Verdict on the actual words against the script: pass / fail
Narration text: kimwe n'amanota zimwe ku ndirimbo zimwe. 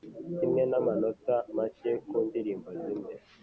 fail